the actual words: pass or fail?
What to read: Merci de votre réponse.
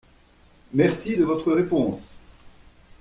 pass